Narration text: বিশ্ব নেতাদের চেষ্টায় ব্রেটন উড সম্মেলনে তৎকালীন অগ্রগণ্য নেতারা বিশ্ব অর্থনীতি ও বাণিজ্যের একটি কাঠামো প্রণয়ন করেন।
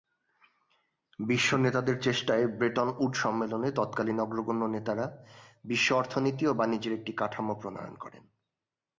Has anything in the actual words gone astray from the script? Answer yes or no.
no